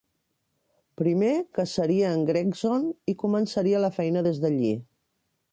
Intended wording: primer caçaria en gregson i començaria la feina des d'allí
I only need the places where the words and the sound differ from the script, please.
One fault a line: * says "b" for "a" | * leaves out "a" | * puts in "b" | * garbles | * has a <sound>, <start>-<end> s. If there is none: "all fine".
all fine